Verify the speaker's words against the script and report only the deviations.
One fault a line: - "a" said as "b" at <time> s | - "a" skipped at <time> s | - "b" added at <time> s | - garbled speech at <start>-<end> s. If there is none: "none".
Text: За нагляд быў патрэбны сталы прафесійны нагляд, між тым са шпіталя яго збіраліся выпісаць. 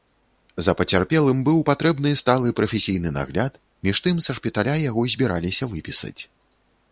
- "нагляд" said as "пацярпелым" at 0.8 s